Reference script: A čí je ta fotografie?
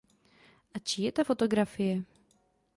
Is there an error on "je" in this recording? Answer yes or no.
no